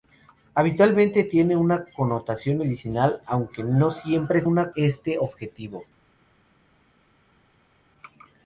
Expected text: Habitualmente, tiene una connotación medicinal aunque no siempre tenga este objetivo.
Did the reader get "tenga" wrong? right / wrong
wrong